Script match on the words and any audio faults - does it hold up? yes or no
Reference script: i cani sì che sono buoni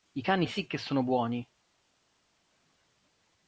yes